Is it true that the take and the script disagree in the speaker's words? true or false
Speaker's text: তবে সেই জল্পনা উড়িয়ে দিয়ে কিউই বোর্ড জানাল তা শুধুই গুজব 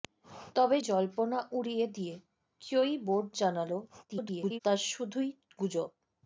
true